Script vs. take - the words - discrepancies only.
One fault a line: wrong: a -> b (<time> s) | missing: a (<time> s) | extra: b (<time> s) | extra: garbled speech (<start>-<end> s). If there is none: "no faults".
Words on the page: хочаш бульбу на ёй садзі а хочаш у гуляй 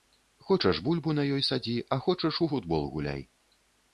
extra: футбол (2.5 s)